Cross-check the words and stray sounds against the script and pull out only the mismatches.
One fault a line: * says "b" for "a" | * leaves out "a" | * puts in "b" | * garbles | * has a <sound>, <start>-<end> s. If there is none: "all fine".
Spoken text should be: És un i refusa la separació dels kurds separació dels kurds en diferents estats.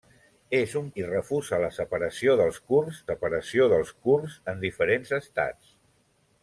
all fine